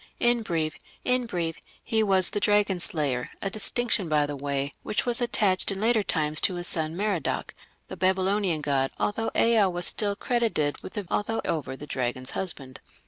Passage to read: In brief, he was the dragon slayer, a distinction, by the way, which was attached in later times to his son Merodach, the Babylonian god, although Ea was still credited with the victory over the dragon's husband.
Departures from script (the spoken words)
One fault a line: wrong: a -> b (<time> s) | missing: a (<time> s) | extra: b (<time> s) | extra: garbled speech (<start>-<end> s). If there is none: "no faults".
extra: in brief (1.0 s)
wrong: victory -> although (11.1 s)